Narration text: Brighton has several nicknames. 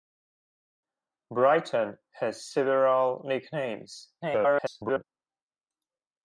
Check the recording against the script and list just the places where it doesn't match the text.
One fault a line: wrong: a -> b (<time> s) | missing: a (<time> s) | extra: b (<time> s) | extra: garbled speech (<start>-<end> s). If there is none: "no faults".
extra: garbled speech (4.2-5.0 s)